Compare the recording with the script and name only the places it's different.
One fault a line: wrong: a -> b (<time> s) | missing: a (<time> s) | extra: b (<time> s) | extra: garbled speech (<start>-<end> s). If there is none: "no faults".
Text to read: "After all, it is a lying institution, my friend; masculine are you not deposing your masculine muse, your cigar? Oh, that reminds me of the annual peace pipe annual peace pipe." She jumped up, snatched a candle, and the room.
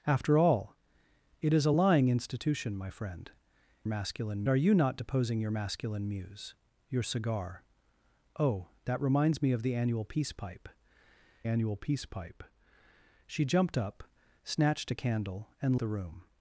no faults